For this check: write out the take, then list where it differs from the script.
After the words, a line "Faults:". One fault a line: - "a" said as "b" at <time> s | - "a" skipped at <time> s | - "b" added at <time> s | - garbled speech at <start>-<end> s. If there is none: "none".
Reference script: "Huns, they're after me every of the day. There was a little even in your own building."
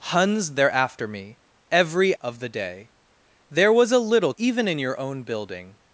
"Huns, they're after me every of the day. There was a little even in your own building."
Faults:
none